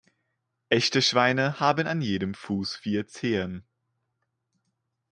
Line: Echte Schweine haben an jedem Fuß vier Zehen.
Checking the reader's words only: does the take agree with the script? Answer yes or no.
yes